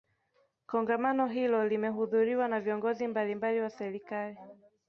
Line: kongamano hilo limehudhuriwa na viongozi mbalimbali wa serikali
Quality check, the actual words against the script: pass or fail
pass